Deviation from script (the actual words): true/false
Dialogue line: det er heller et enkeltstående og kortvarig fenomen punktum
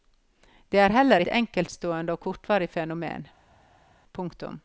false